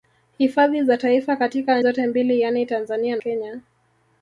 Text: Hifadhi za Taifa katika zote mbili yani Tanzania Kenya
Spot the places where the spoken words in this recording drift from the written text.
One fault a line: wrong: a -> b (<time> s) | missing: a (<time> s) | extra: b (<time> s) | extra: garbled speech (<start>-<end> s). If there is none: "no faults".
no faults